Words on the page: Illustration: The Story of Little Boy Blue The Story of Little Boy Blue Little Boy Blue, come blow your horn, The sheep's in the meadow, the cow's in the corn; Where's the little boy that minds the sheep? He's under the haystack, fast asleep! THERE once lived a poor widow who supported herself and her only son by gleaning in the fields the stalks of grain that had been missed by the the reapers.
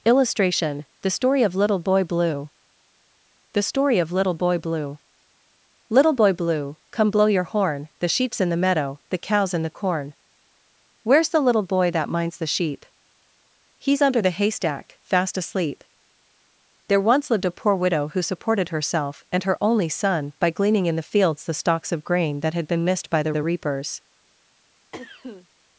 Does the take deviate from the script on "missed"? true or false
false